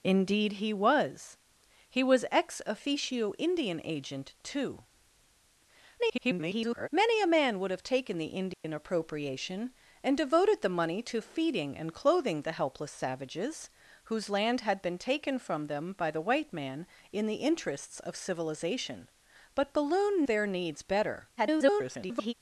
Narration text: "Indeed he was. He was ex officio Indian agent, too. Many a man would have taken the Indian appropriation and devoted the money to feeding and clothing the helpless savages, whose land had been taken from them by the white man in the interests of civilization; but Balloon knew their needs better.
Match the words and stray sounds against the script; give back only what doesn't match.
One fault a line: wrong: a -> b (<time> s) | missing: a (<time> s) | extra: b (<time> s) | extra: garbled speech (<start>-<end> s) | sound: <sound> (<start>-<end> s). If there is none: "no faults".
extra: garbled speech (6.0-6.9 s)
sound: dropout (8.5-8.6 s)
missing: knew (20.2 s)
extra: garbled speech (21.4-22.3 s)